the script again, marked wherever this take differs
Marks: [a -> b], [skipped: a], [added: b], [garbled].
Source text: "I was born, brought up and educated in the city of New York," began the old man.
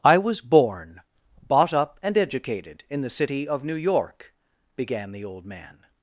"I was born, [brought -> bought] up and educated in the city of New York," began the old man.